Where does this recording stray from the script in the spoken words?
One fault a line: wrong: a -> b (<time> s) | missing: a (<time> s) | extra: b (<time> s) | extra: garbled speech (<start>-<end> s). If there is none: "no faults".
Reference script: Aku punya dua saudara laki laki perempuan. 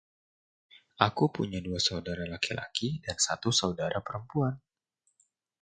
extra: dan satu saudara (3.0 s)